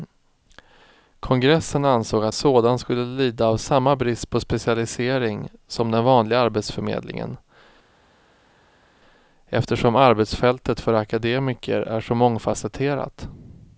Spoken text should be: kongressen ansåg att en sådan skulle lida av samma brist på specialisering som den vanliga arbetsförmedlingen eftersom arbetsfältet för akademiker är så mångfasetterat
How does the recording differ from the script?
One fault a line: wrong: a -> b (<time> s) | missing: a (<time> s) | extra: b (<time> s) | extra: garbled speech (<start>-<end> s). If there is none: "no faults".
missing: en (2.4 s)